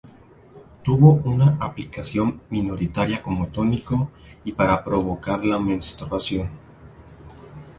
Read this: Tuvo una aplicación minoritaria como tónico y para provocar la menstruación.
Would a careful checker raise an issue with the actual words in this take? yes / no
no